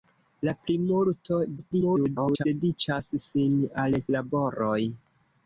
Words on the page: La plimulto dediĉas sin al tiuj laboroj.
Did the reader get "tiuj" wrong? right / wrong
wrong